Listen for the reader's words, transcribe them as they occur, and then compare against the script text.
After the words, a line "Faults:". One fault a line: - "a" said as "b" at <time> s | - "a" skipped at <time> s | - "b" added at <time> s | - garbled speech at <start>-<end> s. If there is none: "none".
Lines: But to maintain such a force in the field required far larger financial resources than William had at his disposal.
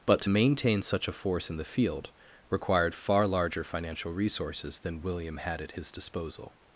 But to maintain such a force in the field required far larger financial resources than William had at his disposal.
Faults:
none